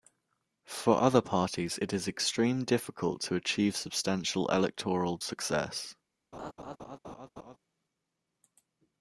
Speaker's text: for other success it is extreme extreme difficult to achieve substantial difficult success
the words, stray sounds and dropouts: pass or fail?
fail